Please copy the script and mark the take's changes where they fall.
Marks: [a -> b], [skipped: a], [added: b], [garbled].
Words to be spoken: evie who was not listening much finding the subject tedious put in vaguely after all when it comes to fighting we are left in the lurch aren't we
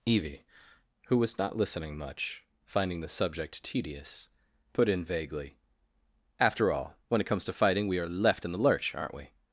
evie who was not listening much finding the subject tedious put in vaguely after all when it comes to fighting we are left in the lurch aren't we